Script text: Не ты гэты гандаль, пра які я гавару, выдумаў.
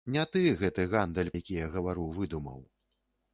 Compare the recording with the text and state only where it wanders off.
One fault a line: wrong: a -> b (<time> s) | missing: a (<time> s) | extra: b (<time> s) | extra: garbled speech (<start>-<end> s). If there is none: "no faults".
missing: пра (1.3 s)